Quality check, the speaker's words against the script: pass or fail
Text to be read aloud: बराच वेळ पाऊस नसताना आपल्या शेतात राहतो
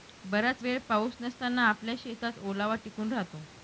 fail